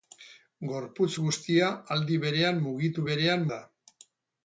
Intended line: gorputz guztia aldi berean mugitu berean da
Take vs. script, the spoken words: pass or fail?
pass